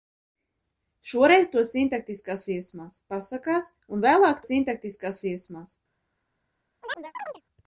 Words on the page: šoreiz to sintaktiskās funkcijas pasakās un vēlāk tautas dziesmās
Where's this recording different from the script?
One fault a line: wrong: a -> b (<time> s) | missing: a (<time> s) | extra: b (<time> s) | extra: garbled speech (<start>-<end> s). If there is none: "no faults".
wrong: funkcijas -> dziesmās (2.5 s)
wrong: tautas -> sintaktiskās (4.5 s)